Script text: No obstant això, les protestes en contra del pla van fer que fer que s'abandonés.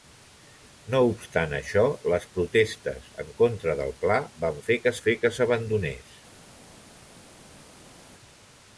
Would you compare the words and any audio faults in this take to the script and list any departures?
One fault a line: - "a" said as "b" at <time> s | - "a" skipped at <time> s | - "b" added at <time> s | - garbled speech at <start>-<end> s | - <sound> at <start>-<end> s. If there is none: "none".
none